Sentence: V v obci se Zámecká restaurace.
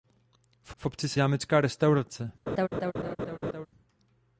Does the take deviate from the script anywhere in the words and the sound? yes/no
yes